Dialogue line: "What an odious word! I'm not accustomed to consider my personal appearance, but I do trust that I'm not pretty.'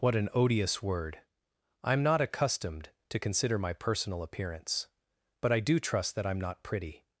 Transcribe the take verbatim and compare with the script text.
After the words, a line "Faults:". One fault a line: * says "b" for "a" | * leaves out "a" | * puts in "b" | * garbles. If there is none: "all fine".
"What an odious word! I'm not accustomed to consider my personal appearance, but I do trust that I'm not pretty.'
Faults:
all fine